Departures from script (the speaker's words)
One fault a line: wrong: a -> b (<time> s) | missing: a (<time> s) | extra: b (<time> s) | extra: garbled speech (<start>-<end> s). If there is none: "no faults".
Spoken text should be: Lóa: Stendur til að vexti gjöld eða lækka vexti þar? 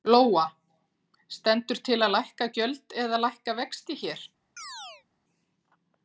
wrong: vexti -> lækka (2.1 s)
wrong: þar -> hér (4.1 s)